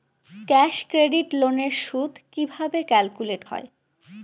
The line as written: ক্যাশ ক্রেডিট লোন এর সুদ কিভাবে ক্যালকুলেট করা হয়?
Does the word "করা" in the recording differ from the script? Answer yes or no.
yes